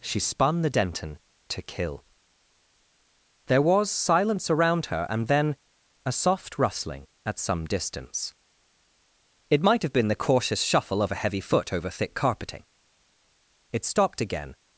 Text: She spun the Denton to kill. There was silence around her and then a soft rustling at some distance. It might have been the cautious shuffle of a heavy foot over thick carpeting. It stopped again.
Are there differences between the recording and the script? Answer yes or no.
no